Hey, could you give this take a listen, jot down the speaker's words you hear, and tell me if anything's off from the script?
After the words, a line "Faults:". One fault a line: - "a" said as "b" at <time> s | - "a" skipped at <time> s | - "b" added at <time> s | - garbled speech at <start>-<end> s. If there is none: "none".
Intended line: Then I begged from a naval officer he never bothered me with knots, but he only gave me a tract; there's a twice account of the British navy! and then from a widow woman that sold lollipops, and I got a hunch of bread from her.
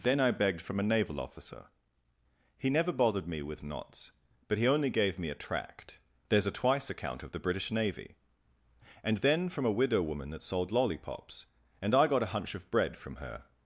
Then I begged from a naval officer he never bothered me with knots, but he only gave me a tract; there's a twice account of the British navy! and then from a widow woman that sold lollipops, and I got a hunch of bread from her.
Faults:
none